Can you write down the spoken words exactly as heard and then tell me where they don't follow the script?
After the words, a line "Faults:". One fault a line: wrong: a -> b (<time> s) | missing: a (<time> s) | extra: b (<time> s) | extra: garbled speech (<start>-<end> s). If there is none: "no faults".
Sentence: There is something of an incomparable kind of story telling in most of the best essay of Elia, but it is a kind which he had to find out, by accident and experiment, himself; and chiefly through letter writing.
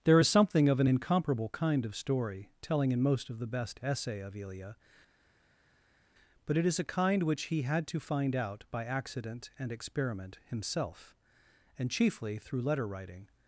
There is something of an incomparable kind of story telling in most of the best essay of Elia, but it is a kind which he had to find out, by accident and experiment, himself; and chiefly through letter writing.
Faults:
no faults